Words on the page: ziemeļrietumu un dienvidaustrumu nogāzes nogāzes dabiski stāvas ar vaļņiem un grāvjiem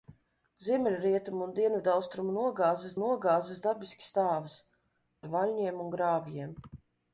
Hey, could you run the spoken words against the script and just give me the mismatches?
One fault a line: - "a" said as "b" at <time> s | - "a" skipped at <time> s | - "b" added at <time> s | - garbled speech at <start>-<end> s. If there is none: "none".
none